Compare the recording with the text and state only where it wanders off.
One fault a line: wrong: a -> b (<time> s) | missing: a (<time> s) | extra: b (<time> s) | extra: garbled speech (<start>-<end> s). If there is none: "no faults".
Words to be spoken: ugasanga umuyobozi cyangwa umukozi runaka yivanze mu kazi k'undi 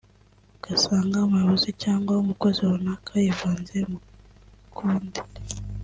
missing: kazi (4.0 s)